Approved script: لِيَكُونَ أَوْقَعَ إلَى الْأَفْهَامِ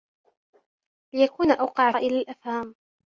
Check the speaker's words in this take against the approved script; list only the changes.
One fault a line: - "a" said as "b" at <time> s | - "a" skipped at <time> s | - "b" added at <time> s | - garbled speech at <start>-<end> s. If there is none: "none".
none